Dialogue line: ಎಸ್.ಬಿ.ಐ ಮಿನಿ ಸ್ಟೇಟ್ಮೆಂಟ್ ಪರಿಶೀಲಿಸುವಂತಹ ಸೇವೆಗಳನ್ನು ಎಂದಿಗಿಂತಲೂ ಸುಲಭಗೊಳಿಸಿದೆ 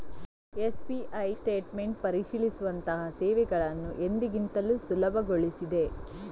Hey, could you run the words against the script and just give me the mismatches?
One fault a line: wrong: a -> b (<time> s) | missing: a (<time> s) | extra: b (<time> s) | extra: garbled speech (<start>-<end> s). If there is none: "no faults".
missing: ಮಿನಿ (1.3 s)